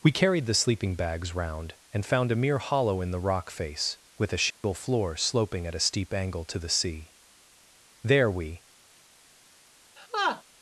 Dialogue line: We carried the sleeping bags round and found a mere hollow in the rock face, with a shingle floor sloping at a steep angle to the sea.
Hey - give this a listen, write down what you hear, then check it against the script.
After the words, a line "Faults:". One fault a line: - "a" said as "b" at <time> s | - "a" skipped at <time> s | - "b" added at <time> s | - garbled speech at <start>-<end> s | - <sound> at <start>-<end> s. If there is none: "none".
We carried the sleeping bags round and found a mere hollow in the rock face, with a shingle floor sloping at a steep angle to the sea. There we
Faults:
- dropout at 4.5-4.6 s
- "There we" added at 8.0 s
- laugh at 10.0-10.4 s